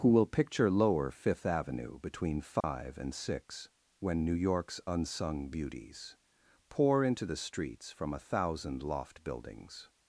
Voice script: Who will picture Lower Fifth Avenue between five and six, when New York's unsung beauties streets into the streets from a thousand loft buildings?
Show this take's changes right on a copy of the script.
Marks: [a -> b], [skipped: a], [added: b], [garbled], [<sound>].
Who will picture Lower Fifth Avenue between five [dropout] and six, when New York's unsung beauties [streets -> pour] into the streets from a thousand loft buildings?